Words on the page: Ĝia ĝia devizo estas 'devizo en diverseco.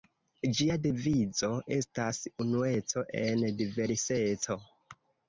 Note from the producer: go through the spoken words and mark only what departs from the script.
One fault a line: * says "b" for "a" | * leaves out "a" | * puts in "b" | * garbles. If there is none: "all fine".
* leaves out "ĝia"
* says "unueco" for "devizo"